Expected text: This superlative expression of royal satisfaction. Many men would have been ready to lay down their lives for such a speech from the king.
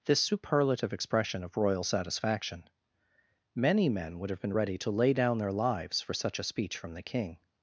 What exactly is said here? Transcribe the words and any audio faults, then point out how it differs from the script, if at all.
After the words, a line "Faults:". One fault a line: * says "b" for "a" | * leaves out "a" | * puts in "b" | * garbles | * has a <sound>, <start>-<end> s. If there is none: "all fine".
This superlative expression of royal satisfaction. Many men would have been ready to lay down their lives for such a speech from the king.
Faults:
all fine